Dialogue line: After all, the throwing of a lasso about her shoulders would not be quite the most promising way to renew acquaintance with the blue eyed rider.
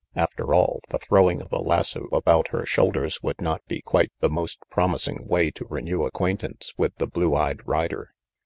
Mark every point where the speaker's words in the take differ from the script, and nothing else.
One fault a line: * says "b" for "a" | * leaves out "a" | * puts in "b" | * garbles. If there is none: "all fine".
all fine